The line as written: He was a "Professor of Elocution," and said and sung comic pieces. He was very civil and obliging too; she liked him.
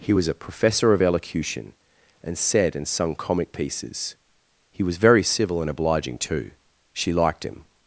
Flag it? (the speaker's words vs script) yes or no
no